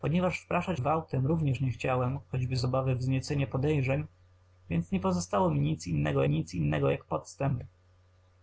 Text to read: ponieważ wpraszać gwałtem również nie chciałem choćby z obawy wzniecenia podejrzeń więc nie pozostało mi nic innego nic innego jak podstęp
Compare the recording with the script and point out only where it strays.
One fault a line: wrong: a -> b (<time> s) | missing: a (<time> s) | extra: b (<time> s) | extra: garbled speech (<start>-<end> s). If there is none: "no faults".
no faults